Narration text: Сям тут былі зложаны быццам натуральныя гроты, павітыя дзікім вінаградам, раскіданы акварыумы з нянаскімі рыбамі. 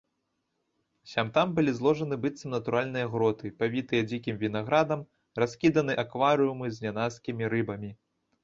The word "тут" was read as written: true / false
false